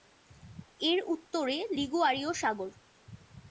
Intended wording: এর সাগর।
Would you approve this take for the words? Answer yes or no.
no